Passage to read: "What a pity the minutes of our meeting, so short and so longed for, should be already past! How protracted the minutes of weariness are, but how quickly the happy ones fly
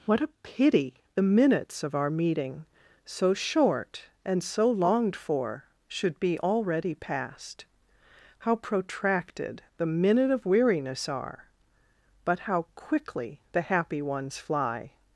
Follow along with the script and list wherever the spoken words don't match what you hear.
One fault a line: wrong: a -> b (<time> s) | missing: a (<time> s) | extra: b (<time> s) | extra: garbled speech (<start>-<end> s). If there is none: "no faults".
wrong: minutes -> minute (9.8 s)